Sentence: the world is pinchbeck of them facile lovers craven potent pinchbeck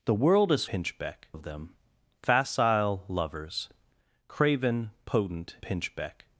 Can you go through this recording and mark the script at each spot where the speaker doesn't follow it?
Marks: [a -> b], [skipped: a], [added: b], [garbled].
the world is pinchbeck of them facile lovers craven potent pinchbeck